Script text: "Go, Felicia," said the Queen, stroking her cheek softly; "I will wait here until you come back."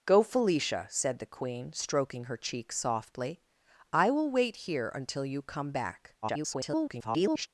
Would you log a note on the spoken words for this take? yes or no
yes